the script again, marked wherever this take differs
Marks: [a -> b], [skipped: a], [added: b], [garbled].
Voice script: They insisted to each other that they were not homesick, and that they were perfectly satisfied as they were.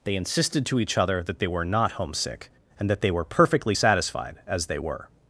They insisted to each other that they were not homesick, and that they were perfectly satisfied as they were.